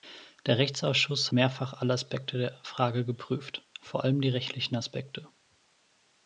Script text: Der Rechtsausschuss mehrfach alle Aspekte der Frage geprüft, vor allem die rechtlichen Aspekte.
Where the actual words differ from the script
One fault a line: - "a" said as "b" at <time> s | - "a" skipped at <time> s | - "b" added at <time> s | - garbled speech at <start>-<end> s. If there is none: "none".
none